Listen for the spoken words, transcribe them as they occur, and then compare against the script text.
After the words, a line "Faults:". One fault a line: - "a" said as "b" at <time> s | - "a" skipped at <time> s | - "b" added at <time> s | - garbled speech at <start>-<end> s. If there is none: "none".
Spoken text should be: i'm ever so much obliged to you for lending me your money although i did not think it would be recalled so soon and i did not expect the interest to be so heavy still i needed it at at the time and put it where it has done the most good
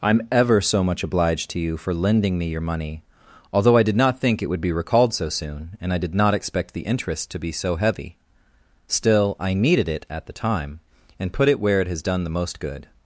i'm ever so much obliged to you for lending me your money although i did not think it would be recalled so soon and i did not expect the interest to be so heavy still i needed it at the time and put it where it has done the most good
Faults:
- "at" skipped at 10.2 s